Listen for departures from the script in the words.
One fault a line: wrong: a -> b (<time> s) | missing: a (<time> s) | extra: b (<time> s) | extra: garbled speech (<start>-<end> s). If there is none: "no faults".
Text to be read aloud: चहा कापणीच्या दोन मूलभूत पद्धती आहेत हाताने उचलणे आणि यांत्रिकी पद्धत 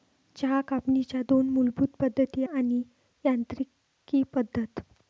missing: आहेत हाताने उचलणे (2.4 s)